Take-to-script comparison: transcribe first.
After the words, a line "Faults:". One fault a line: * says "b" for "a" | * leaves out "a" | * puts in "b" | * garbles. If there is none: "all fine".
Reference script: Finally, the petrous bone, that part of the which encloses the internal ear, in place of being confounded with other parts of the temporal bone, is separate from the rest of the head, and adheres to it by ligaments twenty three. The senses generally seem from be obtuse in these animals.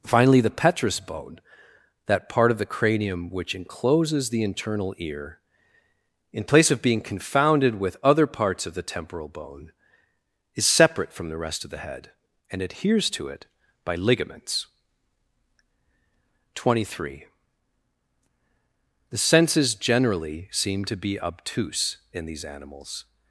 Finally, the petrous bone, that part of the cranium which encloses the internal ear, in place of being confounded with other parts of the temporal bone, is separate from the rest of the head, and adheres to it by ligaments twenty three. The senses generally seem to be obtuse in these animals.
Faults:
* puts in "cranium"
* says "to" for "from"